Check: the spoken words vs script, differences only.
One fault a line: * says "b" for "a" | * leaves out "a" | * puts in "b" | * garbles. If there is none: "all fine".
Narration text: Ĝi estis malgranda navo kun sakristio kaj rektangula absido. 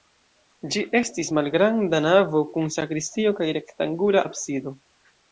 all fine